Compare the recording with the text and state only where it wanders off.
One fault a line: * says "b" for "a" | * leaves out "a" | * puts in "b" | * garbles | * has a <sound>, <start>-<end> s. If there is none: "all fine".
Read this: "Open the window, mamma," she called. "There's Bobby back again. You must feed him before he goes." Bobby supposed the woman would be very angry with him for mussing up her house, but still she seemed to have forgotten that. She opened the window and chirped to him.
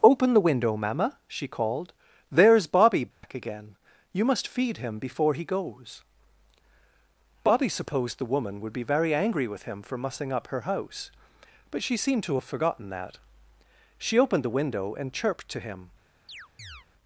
* has a dropout, 3.1-3.2 s
* leaves out "still"
* has a chirp, 16.3-16.9 s